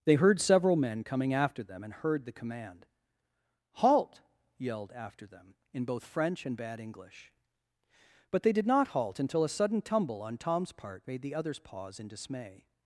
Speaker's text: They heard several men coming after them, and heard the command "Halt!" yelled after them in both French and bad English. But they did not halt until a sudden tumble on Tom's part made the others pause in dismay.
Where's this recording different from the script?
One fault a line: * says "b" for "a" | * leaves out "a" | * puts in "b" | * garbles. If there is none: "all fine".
all fine